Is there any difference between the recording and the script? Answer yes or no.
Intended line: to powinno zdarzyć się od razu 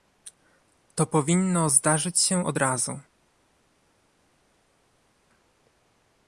no